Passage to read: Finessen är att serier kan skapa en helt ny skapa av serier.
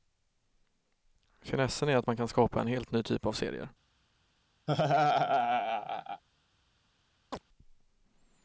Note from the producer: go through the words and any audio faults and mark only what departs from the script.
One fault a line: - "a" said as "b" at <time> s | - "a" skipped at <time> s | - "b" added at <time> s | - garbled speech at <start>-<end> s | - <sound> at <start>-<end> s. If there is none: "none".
- "serier" said as "man" at 2.1 s
- "skapa" said as "typ" at 3.0 s
- laugh at 4.7-6.2 s
- chirp at 7.3-7.4 s